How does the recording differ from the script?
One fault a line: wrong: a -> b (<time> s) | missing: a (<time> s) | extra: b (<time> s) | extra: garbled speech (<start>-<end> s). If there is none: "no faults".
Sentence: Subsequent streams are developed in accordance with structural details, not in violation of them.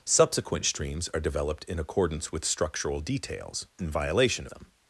missing: not (3.7 s)
missing: of (4.5 s)